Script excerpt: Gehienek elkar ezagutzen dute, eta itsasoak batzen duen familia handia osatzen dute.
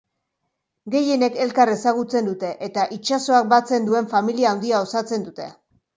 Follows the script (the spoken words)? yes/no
yes